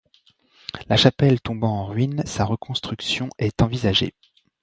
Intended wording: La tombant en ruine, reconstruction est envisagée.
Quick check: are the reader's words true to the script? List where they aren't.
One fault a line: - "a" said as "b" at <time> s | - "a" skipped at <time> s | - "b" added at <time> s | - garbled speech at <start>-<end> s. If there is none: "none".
- "chapelle" added at 1.0 s
- "sa" added at 2.2 s